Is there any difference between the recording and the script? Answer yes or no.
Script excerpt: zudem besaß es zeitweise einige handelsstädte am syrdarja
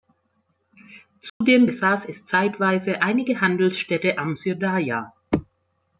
no